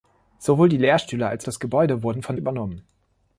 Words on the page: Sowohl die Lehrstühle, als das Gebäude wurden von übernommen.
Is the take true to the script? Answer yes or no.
yes